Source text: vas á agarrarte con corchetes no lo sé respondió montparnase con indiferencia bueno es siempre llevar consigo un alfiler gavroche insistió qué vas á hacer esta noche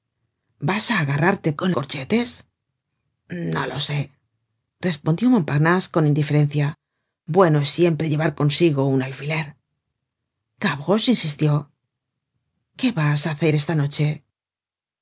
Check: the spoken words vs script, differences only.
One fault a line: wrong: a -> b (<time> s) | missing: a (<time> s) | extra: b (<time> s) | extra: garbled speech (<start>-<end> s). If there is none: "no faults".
no faults